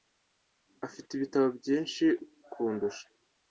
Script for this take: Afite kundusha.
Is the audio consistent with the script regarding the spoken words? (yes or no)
no